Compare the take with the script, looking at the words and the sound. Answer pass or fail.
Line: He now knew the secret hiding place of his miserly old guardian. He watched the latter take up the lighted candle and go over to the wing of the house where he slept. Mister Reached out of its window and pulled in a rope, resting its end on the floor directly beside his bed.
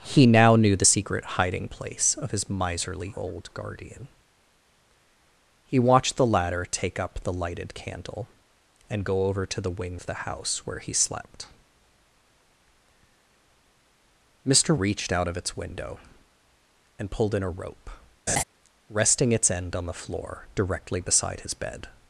fail